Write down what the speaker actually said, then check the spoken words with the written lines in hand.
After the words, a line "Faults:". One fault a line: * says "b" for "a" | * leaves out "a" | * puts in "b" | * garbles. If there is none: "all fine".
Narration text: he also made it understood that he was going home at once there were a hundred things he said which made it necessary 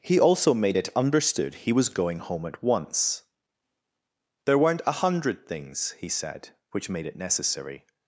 he also made it understood he was going home at once there weren't a hundred things he said which made it necessary
Faults:
* leaves out "that"
* says "weren't" for "were"